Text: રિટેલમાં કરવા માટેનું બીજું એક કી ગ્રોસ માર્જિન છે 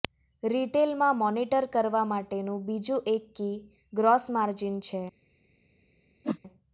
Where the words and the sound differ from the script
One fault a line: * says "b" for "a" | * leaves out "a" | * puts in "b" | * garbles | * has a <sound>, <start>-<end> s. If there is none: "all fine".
* puts in "મોનિટર"
* has a whoosh, 6.2-6.4 s